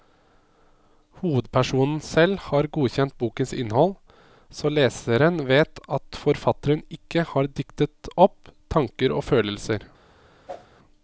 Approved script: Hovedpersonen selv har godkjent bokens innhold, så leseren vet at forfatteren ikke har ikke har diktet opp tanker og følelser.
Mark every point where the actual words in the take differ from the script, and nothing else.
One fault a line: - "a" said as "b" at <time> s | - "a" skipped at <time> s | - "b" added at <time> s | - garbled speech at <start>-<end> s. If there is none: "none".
- "ikke har" skipped at 7.5 s